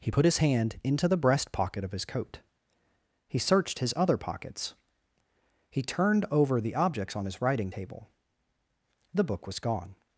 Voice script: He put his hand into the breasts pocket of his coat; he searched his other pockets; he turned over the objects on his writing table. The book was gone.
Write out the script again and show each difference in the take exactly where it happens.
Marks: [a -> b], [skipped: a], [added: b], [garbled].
He put his hand into the [breasts -> breast] pocket of his coat; he searched his other pockets; he turned over the objects on his writing table. The book was gone.